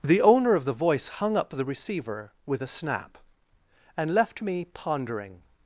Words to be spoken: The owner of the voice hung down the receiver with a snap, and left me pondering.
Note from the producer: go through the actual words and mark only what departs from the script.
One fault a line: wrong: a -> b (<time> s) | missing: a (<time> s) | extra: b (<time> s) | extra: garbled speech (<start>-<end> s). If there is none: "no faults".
wrong: down -> up (1.4 s)